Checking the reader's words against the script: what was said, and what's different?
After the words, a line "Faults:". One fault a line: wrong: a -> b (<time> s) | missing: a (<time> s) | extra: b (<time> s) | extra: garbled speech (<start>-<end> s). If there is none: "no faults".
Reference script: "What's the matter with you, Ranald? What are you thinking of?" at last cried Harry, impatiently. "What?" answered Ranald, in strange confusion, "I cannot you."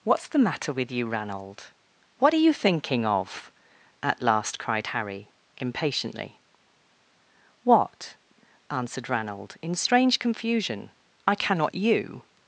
"What's the matter with you, Ranald? What are you thinking of?" at last cried Harry, impatiently. "What?" answered Ranald, in strange confusion, "I cannot you."
Faults:
no faults